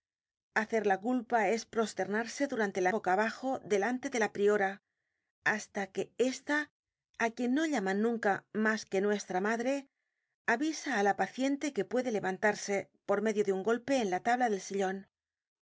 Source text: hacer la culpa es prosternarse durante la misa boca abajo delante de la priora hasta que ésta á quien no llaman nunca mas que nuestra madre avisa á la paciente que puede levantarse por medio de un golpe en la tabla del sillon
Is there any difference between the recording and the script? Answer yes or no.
yes